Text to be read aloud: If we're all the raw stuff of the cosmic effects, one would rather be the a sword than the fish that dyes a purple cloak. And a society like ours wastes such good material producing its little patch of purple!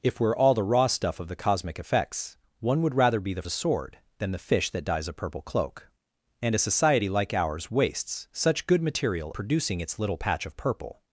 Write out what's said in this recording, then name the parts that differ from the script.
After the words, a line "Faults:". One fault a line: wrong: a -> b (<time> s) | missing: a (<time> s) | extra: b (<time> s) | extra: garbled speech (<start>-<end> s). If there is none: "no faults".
If we're all the raw stuff of the cosmic effects, one would rather be the a sword than the fish that dyes a purple cloak. And a society like ours wastes such good material producing its little patch of purple!
Faults:
no faults